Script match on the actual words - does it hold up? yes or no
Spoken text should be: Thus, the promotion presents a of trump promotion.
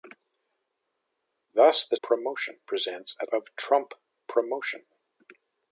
yes